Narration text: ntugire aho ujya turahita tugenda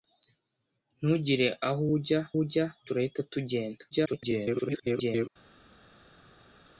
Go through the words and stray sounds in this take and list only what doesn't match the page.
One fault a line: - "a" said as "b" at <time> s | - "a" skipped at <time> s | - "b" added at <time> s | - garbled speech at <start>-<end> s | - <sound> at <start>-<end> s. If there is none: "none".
- "ujya" added at 2.4 s
- garbled speech at 3.9-5.3 s